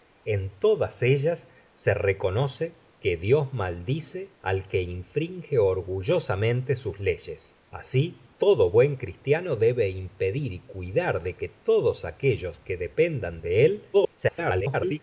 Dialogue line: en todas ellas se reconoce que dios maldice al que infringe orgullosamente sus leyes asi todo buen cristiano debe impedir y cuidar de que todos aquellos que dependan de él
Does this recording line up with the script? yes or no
no